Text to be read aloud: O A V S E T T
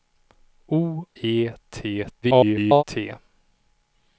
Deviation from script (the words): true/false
true